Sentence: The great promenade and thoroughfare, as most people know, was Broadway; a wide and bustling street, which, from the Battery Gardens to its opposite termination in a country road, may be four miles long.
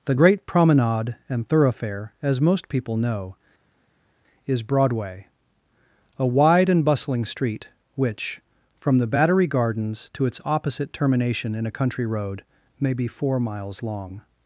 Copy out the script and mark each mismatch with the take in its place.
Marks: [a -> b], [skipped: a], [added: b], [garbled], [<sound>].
The great promenade and thoroughfare, as most people know, [was -> is] Broadway; a wide and bustling street, which, from the Battery Gardens to its opposite termination in a country road, may be four miles long.